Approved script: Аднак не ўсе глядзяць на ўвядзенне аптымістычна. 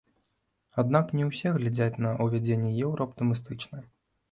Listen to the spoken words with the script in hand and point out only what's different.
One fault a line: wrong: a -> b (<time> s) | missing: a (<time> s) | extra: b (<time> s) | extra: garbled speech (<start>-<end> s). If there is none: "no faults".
extra: еўра (2.9 s)